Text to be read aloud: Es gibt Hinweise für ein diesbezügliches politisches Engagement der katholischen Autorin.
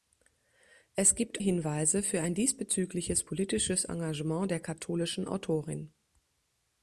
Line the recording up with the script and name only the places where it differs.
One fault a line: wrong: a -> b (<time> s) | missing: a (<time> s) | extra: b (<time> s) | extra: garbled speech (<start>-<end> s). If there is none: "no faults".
no faults